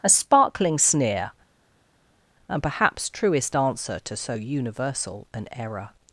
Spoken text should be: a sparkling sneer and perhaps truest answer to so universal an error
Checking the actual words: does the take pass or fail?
pass